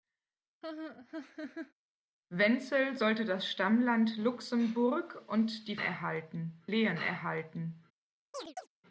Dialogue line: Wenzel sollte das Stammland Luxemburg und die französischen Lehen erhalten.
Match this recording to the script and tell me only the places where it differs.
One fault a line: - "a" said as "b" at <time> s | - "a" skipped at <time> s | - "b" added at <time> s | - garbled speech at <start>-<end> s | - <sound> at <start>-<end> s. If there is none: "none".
- laugh at 0.6-1.7 s
- "französischen" said as "erhalten" at 5.7 s
- chirp at 8.3-8.7 s